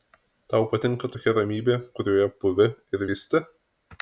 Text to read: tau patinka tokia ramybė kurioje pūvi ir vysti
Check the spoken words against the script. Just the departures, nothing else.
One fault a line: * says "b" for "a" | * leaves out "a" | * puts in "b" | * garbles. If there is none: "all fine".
all fine